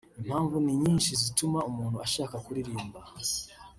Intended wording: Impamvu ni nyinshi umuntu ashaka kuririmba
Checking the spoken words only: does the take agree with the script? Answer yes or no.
no